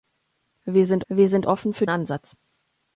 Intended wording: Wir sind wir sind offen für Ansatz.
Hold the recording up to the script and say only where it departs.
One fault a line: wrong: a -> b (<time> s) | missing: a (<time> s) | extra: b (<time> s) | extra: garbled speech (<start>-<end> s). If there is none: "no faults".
no faults